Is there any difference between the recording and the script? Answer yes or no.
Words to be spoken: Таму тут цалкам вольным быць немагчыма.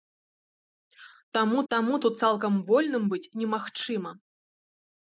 yes